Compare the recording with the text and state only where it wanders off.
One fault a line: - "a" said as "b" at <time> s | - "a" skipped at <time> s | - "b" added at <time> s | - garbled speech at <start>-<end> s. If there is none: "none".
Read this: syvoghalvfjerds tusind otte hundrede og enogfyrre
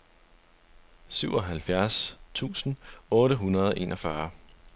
none